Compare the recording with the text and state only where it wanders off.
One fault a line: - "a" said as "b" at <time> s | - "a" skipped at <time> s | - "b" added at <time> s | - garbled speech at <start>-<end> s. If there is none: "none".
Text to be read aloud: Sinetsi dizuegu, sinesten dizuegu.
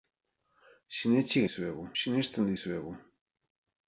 none